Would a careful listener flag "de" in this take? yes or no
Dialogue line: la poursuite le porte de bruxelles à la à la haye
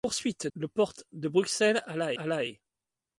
no